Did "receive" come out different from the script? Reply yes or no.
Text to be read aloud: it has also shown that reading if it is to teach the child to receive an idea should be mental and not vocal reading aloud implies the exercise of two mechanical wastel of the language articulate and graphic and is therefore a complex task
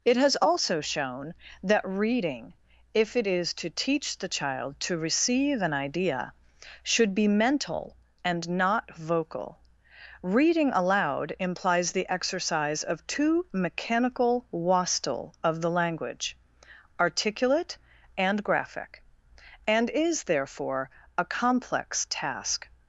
no